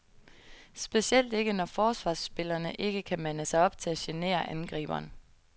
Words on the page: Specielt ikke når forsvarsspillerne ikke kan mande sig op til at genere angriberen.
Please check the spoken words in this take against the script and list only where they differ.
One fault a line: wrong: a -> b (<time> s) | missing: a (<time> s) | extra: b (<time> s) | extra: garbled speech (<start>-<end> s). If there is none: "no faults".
no faults